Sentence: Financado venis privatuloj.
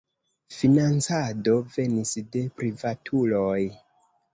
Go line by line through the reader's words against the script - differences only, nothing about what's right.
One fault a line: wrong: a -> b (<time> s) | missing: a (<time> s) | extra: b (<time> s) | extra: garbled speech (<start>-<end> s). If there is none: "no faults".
extra: de (2.3 s)